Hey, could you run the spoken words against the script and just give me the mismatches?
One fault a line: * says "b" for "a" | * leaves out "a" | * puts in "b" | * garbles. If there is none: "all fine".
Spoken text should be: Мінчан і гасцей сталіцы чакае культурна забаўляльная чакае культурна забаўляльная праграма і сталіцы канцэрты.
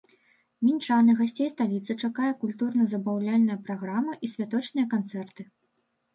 * leaves out "чакае культурна забаўляльная"
* says "святочныя" for "сталіцы"